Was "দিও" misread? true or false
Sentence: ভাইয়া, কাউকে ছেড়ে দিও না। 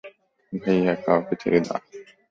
true